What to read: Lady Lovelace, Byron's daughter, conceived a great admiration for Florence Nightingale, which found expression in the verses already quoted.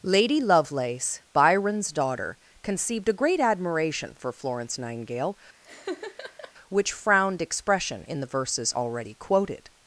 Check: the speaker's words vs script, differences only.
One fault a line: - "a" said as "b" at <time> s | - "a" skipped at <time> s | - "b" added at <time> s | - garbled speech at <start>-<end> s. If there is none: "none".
- "found" said as "frowned" at 6.9 s